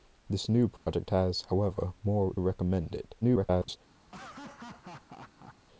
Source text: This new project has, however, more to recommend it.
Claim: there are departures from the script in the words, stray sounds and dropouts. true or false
true